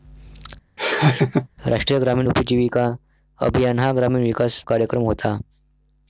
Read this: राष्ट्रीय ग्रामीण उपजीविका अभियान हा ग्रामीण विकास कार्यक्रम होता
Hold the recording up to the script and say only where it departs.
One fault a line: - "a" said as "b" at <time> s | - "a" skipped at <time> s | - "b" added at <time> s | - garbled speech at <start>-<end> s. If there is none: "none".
none